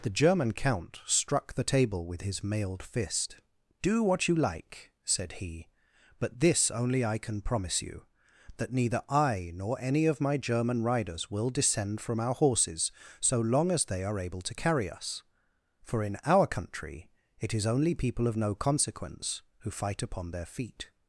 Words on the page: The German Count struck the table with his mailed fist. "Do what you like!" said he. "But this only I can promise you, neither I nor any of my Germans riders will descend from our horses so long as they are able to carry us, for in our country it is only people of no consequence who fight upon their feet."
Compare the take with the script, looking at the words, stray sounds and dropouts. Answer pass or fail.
fail